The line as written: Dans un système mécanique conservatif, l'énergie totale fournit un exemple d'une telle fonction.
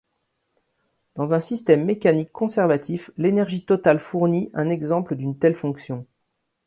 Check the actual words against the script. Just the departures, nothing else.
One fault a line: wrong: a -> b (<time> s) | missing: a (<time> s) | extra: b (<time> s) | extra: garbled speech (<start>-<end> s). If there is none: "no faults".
no faults